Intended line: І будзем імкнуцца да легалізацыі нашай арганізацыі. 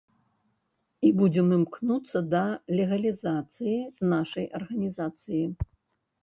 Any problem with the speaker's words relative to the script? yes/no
no